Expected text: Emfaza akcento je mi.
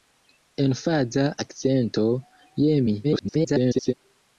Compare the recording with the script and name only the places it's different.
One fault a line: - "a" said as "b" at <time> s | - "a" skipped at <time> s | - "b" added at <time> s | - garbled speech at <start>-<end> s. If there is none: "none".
- garbled speech at 3.0-3.9 s